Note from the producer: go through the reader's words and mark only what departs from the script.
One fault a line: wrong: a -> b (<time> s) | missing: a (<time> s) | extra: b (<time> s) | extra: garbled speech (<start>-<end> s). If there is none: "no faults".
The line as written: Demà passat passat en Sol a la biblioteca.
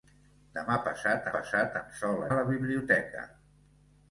no faults